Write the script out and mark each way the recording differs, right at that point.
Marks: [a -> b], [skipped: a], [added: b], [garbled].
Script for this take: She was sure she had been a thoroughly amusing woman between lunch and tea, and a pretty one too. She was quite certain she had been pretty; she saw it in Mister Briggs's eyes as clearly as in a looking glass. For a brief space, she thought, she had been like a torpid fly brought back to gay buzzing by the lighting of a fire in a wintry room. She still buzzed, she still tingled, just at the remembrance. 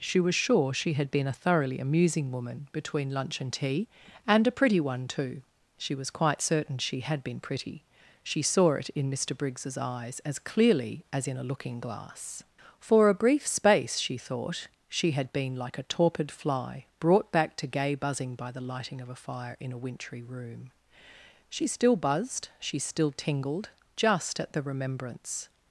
She was sure she had been a thoroughly amusing woman between lunch and tea, and a pretty one too. She was quite certain she had been pretty; she saw it in Mister Briggs's eyes as clearly as in a looking glass. For a brief space, she thought, she had been like a torpid fly brought back to gay buzzing by the lighting of a fire in a wintry room. She still buzzed, she still tingled, just at the remembrance.